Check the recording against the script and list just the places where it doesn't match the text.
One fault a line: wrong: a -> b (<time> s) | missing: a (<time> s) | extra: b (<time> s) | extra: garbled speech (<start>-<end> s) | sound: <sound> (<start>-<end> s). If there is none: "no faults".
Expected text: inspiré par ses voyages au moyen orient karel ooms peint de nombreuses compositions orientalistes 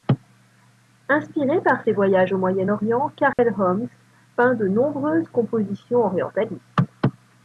sound: dropout (3.3-3.4 s)